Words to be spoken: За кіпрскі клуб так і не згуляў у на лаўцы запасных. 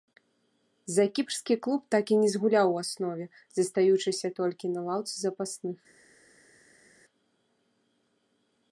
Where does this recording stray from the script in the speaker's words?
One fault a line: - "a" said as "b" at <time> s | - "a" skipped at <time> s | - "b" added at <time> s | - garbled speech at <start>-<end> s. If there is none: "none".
- "аснове застаючыся толькі" added at 2.8 s